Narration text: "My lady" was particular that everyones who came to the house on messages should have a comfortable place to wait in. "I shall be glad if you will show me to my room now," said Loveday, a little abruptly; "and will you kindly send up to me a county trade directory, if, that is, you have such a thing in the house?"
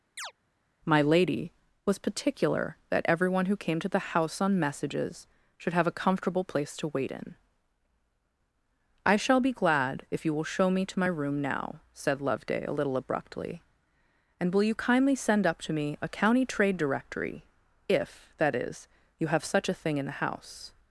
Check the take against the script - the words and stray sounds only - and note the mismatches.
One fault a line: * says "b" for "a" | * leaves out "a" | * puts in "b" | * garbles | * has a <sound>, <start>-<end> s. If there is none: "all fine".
* has a chirp, 0.2-0.3 s
* says "everyone" for "everyones"